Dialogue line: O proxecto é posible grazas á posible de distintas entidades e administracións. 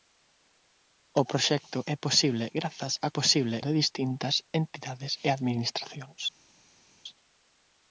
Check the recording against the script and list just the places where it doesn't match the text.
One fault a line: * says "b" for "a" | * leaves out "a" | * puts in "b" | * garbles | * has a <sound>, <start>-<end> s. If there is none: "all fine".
all fine